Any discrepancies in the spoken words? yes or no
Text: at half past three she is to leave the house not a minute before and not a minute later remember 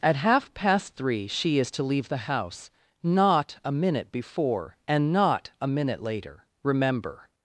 no